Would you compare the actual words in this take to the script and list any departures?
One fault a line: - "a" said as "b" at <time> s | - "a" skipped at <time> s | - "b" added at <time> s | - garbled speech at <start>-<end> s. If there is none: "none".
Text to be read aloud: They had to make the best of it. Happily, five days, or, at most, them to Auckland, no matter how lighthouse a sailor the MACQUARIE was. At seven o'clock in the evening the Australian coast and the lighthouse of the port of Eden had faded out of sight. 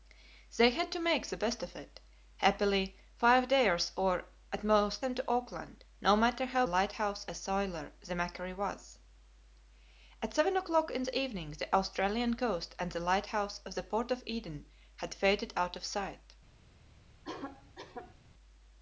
none